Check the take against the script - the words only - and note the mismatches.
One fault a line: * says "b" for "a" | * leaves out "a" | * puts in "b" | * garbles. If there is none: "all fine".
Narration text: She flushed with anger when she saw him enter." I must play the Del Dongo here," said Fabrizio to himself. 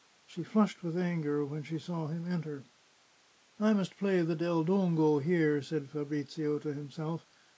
all fine